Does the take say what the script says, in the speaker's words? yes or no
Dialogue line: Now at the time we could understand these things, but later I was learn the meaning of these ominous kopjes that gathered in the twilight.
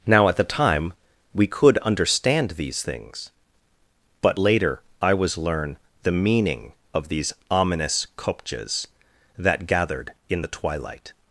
yes